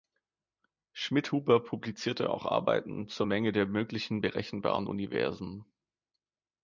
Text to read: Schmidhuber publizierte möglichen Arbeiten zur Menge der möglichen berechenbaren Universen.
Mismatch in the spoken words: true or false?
true